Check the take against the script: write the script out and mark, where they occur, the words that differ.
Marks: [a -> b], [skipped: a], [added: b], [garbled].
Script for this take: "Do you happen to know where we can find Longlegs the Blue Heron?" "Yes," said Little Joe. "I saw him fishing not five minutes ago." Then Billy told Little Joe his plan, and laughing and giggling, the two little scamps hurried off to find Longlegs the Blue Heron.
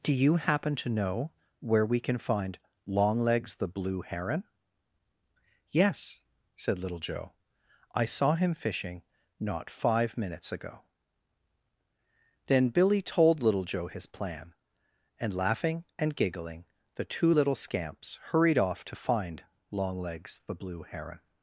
"Do you happen to know where we can find Longlegs the Blue Heron?" "Yes," said Little Joe. "I saw him fishing not five minutes ago." Then Billy told Little Joe his plan, and laughing and giggling, the two little scamps hurried off to find Longlegs the Blue Heron.